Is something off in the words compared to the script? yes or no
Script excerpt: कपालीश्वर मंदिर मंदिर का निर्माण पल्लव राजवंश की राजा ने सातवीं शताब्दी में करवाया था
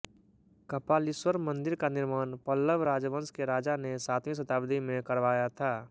yes